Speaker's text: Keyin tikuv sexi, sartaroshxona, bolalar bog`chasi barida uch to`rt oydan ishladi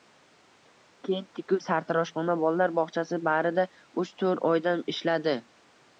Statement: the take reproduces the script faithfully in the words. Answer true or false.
false